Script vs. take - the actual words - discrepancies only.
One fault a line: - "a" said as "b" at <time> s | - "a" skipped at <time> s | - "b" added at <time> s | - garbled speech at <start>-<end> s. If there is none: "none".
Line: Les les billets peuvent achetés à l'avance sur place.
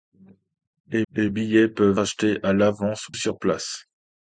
none